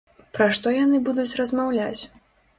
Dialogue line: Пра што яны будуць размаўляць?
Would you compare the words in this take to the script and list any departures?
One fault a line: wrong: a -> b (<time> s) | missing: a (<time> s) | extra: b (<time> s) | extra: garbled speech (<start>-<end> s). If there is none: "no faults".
no faults